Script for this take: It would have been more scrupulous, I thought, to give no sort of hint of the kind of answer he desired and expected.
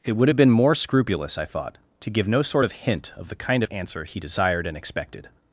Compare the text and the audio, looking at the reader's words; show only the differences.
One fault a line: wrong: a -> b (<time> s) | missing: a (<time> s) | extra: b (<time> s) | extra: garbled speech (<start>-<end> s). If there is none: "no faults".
no faults